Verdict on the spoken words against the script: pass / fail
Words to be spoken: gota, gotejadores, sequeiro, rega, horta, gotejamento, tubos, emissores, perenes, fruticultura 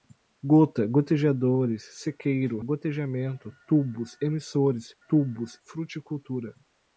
fail